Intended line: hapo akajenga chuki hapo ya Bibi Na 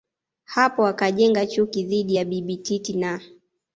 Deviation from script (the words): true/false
true